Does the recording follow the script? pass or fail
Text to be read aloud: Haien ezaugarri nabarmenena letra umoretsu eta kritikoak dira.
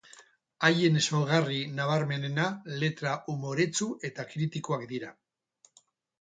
pass